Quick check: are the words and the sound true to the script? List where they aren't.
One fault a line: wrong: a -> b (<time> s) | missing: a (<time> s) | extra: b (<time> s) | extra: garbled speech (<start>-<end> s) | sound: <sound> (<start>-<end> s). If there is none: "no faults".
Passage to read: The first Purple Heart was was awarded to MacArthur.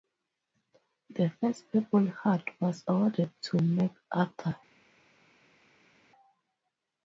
missing: was (2.8 s)